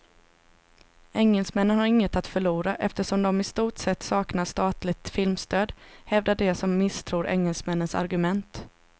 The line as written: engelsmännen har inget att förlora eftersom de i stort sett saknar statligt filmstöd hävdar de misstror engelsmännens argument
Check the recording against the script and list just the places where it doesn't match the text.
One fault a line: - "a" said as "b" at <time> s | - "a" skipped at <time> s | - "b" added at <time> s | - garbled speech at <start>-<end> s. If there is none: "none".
- "som" added at 6.5 s